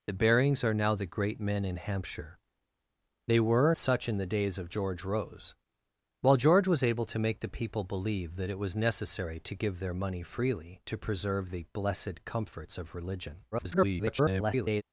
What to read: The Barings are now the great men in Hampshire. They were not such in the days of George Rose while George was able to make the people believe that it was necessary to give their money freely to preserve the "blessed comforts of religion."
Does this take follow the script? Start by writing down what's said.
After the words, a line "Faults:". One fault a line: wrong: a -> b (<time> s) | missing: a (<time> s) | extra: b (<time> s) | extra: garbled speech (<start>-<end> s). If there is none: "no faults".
The Barings are now the great men in Hampshire. They were such in the days of George Rose while George was able to make the people believe that it was necessary to give their money freely to preserve the "blessed comforts of religion." [garbled]
Faults:
missing: not (3.8 s)
extra: garbled speech (13.5-14.8 s)